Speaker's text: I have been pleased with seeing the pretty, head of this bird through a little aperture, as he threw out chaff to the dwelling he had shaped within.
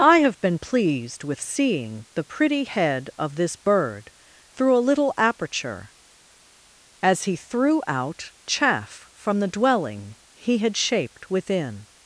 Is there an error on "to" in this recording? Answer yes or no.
yes